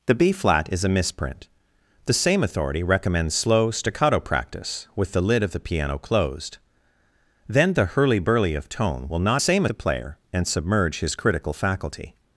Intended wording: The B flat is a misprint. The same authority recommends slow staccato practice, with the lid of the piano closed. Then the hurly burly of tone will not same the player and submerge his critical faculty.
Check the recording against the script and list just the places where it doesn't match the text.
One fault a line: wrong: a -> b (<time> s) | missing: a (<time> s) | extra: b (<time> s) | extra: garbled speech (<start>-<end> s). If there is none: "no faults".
no faults